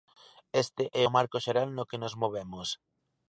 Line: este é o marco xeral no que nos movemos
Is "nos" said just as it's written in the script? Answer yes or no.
yes